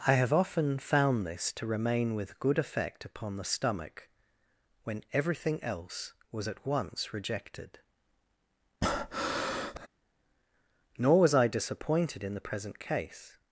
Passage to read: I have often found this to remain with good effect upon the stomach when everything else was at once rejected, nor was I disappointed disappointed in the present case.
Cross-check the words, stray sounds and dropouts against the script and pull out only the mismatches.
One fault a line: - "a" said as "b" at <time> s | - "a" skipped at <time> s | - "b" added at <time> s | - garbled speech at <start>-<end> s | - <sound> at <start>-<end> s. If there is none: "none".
- breath at 8.8-9.9 s
- "disappointed" skipped at 12.2 s